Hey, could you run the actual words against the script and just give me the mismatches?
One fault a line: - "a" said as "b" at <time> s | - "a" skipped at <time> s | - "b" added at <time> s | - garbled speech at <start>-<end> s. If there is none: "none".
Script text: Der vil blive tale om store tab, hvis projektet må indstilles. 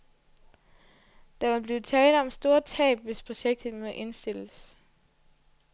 none